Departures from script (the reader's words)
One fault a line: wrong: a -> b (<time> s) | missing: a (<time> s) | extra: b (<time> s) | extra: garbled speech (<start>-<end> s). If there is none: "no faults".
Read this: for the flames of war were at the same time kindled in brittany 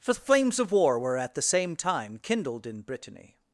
no faults